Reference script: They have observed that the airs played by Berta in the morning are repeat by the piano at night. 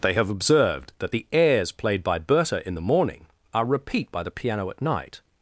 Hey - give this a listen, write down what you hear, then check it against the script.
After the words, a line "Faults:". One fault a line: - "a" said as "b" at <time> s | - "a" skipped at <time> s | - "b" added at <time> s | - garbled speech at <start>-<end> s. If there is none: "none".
They have observed that the airs played by Berta in the morning are repeat by the piano at night.
Faults:
none